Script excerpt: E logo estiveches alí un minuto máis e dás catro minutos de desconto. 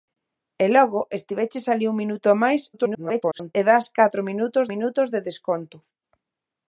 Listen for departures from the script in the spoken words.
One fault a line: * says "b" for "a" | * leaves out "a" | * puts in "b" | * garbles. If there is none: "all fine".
* garbles
* puts in "minutos"